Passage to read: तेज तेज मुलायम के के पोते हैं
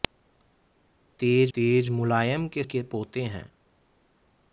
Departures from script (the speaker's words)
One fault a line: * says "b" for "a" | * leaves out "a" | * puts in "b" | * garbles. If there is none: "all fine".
all fine